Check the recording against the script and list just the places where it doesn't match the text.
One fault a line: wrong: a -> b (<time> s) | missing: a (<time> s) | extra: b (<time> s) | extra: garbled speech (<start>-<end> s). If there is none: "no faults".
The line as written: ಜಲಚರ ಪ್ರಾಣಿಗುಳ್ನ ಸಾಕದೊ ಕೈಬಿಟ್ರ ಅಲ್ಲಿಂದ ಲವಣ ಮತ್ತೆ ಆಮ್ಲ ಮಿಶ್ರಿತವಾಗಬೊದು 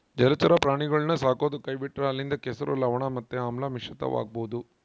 extra: ಕೆಸರು (2.4 s)